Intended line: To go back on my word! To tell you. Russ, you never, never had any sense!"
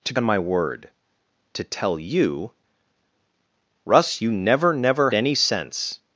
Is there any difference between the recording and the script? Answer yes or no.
yes